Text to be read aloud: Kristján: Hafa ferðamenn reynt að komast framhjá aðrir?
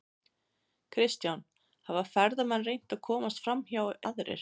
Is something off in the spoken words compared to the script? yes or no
no